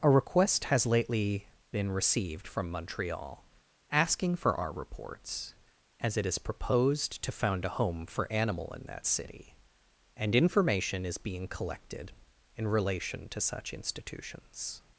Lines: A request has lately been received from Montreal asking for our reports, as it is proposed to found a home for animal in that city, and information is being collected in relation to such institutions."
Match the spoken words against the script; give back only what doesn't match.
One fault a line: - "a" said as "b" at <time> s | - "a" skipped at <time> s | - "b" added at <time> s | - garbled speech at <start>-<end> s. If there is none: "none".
none